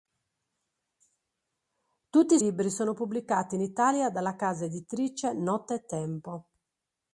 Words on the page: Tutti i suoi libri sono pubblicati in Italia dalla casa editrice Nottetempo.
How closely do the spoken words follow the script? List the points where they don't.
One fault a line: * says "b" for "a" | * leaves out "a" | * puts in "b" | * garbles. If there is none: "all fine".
* leaves out "suoi"